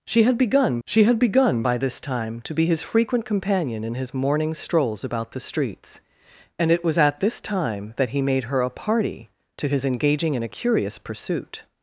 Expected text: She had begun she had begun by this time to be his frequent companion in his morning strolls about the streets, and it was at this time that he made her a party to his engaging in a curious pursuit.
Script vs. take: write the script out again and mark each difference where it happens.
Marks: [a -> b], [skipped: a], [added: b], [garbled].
She had begun she had begun by this time to be his frequent companion in his morning strolls about the streets, and it was at this time that he made her a party to his engaging in a curious pursuit.